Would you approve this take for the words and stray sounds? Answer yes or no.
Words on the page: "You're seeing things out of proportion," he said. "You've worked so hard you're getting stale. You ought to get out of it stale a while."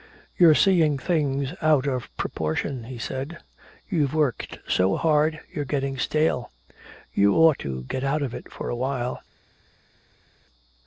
no